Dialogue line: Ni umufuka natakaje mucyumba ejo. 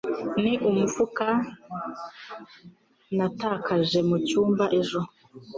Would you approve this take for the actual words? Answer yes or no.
yes